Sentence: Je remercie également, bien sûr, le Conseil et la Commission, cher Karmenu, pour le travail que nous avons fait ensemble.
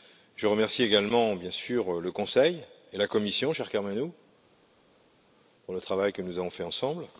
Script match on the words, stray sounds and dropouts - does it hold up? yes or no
yes